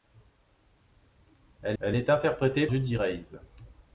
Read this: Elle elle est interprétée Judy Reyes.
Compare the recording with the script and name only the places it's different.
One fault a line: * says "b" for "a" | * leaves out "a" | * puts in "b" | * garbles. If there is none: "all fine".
all fine